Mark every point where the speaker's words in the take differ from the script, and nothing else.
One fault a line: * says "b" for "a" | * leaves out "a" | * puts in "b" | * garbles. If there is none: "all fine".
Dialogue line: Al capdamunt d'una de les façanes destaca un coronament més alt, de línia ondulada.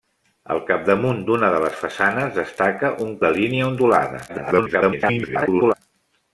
* leaves out "coronament més alt"
* garbles